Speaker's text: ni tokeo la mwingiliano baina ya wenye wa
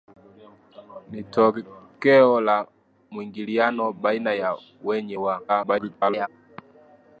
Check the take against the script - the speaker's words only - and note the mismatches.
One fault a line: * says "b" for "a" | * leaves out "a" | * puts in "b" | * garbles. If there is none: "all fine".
* garbles